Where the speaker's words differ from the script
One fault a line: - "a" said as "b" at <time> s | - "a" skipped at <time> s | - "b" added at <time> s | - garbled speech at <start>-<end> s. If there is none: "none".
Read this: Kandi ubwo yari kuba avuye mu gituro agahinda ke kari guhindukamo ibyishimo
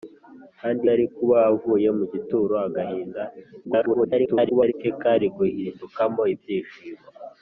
- "ubwo" skipped at 0.8 s
- garbled speech at 3.6-4.7 s